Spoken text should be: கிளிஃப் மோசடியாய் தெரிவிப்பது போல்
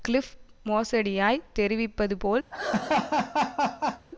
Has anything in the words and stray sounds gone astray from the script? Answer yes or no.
yes